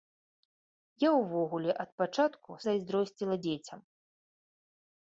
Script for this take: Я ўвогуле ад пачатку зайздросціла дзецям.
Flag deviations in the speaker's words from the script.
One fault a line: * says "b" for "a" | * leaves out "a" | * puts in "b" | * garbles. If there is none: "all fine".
all fine